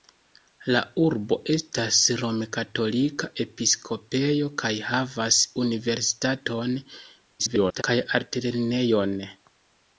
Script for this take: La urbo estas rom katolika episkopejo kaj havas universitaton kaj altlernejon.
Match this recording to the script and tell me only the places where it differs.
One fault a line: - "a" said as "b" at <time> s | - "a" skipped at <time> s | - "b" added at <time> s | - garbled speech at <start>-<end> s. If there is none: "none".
- garbled speech at 7.4-7.8 s